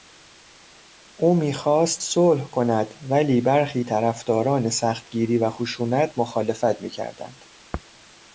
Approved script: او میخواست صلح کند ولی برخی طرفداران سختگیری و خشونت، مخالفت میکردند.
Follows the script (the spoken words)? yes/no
yes